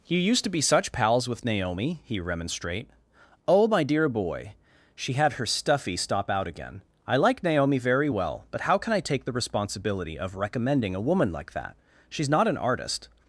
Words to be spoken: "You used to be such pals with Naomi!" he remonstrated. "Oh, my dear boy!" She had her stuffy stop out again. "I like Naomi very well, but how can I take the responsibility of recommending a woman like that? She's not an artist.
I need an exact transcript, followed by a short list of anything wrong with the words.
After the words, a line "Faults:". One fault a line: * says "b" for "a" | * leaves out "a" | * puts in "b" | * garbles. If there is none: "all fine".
"You used to be such pals with Naomi!" he remonstrate. "Oh, my dear boy!" She had her stuffy stop out again. "I like Naomi very well, but how can I take the responsibility of recommending a woman like that? She's not an artist.
Faults:
* says "remonstrate" for "remonstrated"